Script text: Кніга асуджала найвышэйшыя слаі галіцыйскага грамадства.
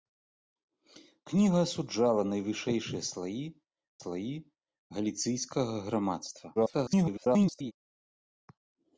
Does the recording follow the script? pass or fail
fail